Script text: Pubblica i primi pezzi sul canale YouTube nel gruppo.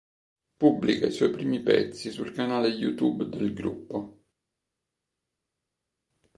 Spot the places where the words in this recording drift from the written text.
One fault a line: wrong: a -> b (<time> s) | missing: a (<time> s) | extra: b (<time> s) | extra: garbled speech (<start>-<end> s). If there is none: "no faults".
extra: suoi (1.1 s)
wrong: nel -> del (3.3 s)